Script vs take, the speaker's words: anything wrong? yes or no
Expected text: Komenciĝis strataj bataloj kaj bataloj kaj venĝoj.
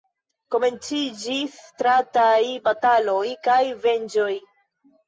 yes